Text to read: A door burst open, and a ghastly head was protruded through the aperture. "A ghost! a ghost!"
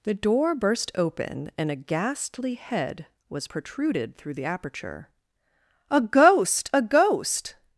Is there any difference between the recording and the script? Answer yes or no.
yes